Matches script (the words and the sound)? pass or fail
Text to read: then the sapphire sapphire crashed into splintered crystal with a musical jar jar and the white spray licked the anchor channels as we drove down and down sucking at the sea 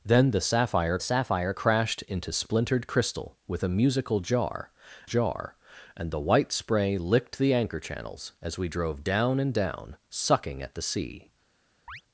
fail